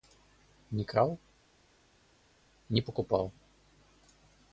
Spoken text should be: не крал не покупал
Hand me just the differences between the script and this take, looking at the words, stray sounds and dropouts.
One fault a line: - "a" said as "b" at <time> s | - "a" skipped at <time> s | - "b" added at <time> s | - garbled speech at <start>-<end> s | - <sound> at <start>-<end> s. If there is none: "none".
none